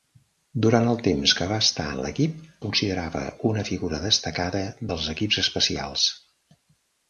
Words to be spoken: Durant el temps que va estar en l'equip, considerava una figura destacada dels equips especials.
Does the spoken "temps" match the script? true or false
true